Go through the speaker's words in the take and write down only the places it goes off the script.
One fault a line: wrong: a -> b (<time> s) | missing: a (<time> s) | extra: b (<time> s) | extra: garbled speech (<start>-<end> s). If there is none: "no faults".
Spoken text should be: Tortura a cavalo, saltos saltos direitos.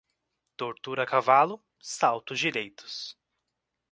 missing: saltos (2.4 s)